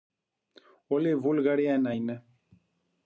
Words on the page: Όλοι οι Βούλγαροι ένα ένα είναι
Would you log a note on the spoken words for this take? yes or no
yes